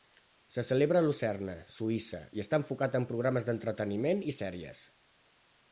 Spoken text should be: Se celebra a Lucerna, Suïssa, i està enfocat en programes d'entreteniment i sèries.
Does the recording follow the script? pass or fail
pass